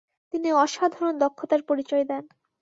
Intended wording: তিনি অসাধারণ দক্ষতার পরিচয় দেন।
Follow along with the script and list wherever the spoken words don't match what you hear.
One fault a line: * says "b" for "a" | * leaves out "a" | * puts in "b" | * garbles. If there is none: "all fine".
all fine